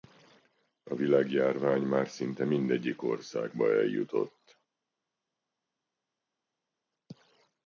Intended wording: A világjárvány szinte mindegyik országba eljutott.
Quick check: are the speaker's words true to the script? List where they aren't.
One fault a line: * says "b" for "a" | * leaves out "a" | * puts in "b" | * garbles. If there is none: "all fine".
* puts in "már"